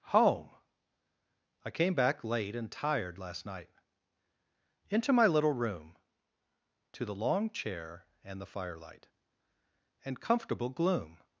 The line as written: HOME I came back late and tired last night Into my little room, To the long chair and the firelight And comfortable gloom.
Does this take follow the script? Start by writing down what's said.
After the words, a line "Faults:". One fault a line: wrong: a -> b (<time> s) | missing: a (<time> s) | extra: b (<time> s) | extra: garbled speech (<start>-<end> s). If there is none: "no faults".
HOME I came back late and tired last night Into my little room, To the long chair and the firelight And comfortable gloom.
Faults:
no faults